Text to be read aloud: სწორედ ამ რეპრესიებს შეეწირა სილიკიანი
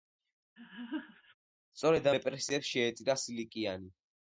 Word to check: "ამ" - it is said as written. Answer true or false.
false